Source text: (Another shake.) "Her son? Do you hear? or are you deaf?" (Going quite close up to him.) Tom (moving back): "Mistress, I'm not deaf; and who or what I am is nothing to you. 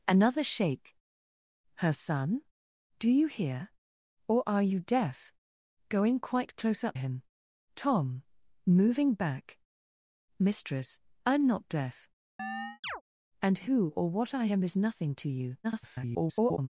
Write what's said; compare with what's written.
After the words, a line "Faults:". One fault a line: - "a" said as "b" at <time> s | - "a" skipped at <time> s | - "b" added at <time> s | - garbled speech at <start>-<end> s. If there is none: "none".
(Another shake.) "Her son? Do you hear? or are you deaf?" (Going quite close up him.) Tom (moving back): "Mistress, I'm not deaf; and who or what I am is nothing to you. [garbled]
Faults:
- "to" skipped at 7.0 s
- garbled speech at 15.6-16.7 s